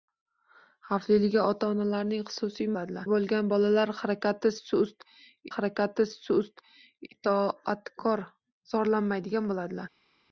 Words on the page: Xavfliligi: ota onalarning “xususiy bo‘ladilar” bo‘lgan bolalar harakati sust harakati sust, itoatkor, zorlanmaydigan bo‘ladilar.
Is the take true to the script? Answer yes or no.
yes